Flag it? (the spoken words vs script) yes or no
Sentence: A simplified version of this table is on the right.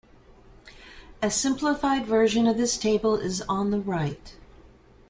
no